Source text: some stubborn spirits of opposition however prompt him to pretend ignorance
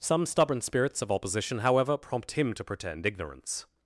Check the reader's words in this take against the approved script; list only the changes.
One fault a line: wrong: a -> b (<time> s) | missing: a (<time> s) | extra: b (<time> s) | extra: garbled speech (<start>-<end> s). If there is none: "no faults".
no faults